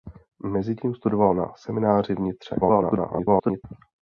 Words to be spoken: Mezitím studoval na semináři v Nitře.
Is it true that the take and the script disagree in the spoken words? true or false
true